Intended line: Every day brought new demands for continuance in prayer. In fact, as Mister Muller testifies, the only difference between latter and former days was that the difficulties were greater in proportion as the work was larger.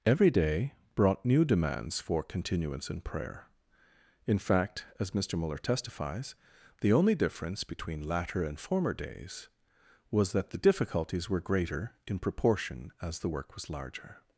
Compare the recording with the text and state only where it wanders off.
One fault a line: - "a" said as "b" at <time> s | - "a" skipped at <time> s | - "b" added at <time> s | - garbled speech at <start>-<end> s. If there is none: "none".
none